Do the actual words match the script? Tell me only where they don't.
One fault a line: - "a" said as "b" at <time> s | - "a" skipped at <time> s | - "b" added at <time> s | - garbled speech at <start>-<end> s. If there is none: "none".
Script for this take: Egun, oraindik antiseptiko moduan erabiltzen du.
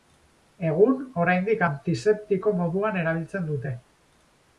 - "du" said as "dute" at 3.5 s